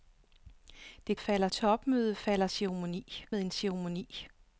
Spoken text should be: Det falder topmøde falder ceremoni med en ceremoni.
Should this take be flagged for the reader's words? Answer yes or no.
no